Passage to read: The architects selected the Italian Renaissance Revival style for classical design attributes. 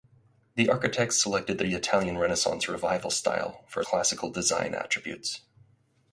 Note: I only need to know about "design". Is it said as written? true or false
true